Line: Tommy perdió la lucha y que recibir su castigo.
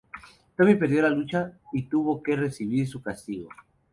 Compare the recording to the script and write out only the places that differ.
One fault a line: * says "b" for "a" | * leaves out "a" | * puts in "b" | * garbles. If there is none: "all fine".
* puts in "tuvo"